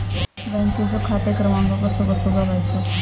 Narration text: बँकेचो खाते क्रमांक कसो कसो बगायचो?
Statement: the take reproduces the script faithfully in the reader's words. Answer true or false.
true